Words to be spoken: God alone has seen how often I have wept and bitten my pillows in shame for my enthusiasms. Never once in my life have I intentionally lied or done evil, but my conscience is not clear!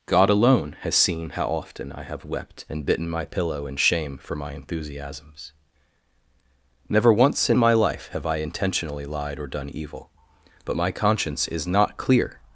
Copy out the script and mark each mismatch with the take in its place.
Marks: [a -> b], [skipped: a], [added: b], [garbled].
God alone has seen how often I have wept and bitten my [pillows -> pillow] in shame for my enthusiasms. Never once in my life have I intentionally lied or done evil, but my conscience is not clear!